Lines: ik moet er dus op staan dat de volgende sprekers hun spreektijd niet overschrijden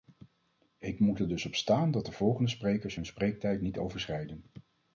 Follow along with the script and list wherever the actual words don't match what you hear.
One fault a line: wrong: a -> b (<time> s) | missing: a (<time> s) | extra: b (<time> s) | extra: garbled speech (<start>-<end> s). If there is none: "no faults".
no faults